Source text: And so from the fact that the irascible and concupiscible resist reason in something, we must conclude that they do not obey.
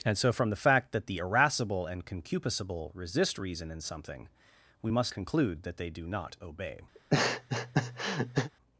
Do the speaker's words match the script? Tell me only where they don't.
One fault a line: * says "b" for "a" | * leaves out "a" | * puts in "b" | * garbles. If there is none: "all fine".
all fine